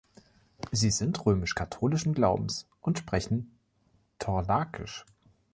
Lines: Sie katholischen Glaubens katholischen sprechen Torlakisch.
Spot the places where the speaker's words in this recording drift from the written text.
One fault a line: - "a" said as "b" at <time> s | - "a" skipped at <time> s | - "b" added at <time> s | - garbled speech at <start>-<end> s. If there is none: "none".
- "sind römisch" added at 0.9 s
- "katholischen" said as "und" at 2.8 s